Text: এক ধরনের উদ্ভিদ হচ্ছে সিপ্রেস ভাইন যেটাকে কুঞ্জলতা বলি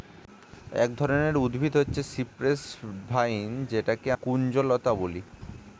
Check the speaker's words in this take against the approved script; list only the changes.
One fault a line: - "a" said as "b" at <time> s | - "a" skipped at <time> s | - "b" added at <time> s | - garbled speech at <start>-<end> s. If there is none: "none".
none